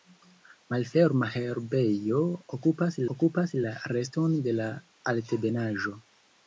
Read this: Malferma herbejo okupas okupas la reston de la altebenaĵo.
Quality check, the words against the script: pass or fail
pass